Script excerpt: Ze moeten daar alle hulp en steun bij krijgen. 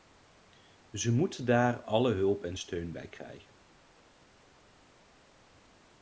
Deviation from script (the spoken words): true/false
false